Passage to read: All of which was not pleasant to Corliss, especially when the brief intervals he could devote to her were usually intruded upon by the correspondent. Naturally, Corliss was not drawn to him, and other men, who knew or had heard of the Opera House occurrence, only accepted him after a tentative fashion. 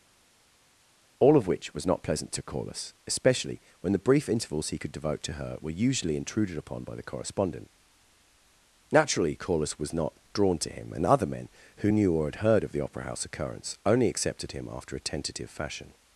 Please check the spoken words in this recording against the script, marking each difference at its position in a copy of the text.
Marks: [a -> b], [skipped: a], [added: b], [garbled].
All of which was not pleasant to Corliss, especially when the brief intervals he could devote to her were usually intruded upon by the correspondent. Naturally, Corliss was not drawn to him, and other men, who knew or had heard of the Opera House occurrence, only accepted him after a tentative fashion.